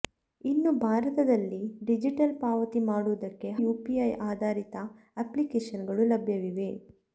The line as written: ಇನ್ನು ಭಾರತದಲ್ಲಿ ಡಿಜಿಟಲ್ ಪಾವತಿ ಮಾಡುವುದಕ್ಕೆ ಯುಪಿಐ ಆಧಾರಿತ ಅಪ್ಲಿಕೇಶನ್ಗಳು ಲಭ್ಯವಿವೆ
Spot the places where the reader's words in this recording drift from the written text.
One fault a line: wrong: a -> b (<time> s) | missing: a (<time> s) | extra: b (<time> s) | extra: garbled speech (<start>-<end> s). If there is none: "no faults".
no faults